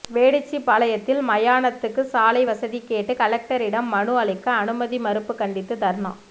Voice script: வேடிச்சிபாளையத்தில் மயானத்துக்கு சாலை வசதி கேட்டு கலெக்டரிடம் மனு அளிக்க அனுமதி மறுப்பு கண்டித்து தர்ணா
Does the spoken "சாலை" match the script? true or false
true